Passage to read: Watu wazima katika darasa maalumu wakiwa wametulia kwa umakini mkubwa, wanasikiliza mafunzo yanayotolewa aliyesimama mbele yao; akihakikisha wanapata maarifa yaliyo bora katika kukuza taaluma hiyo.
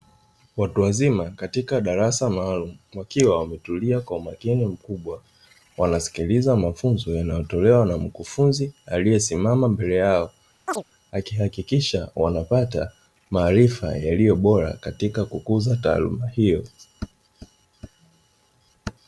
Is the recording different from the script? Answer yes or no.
yes